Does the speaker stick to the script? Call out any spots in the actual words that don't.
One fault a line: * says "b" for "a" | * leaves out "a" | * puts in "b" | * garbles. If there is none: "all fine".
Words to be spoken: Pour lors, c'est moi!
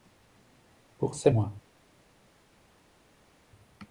* leaves out "lors"